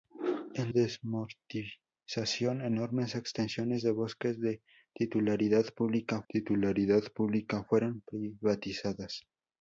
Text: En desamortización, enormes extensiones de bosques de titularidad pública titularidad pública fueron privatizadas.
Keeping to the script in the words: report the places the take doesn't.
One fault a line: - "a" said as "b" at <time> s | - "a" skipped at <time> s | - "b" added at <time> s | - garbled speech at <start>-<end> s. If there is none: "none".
none